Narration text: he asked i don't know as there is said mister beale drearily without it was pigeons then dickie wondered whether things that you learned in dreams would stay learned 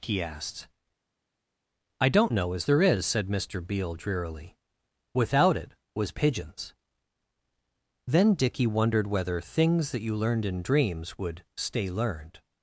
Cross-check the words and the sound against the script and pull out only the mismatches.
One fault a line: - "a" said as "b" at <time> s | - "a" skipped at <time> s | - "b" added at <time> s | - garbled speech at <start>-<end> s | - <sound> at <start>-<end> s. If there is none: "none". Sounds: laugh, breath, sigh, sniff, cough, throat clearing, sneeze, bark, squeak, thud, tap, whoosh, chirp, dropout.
none